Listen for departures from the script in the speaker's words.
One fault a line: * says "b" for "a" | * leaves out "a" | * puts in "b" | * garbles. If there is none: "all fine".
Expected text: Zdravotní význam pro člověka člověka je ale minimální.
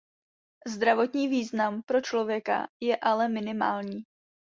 * leaves out "člověka"